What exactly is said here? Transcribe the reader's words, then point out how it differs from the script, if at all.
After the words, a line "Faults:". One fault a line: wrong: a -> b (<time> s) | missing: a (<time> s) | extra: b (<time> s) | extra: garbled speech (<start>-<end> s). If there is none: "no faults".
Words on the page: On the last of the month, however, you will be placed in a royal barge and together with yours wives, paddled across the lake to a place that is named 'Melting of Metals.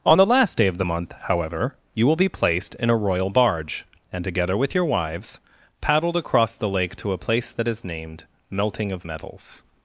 On the last day of the month, however, you will be placed in a royal barge and together with your wives, paddled across the lake to a place that is named 'Melting of Metals.
Faults:
extra: day (0.6 s)
wrong: yours -> your (4.7 s)